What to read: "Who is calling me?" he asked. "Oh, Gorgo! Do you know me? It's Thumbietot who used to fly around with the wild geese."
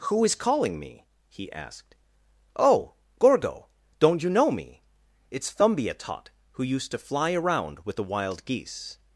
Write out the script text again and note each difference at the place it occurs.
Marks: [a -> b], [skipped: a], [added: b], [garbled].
"Who is calling me?" he asked. "Oh, Gorgo! [Do -> Don't] you know me? It's Thumbietot who used to fly around with the wild geese."